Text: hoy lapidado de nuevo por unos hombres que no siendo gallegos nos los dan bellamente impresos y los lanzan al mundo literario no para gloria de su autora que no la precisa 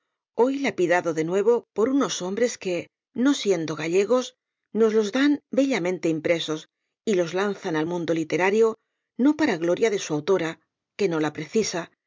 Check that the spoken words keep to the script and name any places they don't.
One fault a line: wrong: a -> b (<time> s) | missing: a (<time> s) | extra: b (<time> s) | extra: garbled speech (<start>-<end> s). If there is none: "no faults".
no faults